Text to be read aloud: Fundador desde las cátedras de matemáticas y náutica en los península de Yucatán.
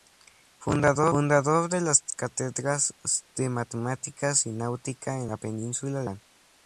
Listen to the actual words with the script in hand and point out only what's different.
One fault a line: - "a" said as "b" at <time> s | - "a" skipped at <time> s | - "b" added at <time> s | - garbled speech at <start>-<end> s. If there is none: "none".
- "desde" said as "de" at 1.7 s
- "los" said as "la" at 5.3 s